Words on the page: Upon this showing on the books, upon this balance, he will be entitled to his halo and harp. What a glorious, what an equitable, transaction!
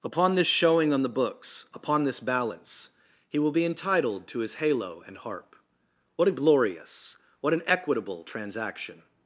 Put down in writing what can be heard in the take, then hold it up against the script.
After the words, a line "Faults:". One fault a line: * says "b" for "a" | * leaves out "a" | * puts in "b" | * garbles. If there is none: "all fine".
Upon this showing on the books, upon this balance, he will be entitled to his halo and harp. What a glorious, what an equitable, transaction!
Faults:
all fine